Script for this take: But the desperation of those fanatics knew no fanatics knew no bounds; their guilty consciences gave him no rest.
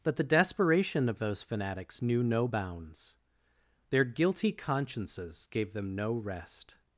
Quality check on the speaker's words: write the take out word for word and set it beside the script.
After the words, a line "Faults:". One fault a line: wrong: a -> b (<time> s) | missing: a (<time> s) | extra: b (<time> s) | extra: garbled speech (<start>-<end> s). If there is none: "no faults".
But the desperation of those fanatics knew no bounds; their guilty consciences gave them no rest.
Faults:
missing: fanatics knew no (2.5 s)
wrong: him -> them (5.7 s)